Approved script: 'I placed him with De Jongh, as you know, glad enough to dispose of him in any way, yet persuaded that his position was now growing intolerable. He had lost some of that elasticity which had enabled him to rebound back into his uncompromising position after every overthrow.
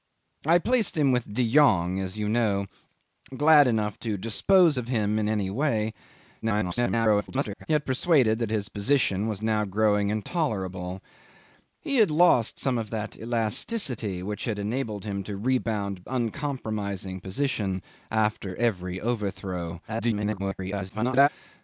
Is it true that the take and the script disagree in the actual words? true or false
true